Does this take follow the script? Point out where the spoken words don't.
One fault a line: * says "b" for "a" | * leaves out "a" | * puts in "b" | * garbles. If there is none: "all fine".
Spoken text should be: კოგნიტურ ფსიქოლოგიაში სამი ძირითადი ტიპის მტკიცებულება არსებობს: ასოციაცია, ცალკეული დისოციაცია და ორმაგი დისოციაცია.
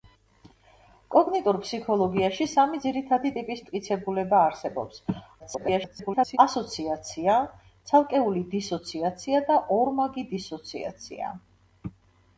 * garbles